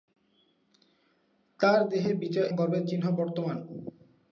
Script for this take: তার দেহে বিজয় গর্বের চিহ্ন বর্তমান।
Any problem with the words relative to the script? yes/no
no